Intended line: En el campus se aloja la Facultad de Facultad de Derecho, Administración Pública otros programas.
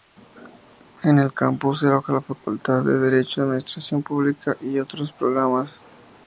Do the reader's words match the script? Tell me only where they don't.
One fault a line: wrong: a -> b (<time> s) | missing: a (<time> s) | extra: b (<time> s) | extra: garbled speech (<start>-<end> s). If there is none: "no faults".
missing: Facultad de (3.0 s)
extra: y (4.6 s)